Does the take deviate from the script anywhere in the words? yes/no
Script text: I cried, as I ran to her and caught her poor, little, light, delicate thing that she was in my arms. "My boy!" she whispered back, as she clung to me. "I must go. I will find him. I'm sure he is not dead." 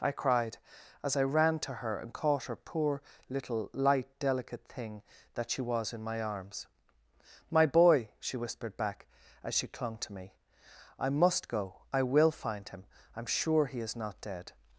no